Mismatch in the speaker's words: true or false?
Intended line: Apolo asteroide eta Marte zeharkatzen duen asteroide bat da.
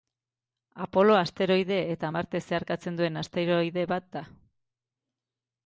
false